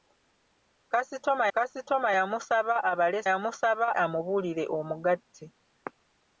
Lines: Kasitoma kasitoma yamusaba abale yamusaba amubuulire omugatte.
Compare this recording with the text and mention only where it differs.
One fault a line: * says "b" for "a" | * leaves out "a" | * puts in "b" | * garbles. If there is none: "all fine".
all fine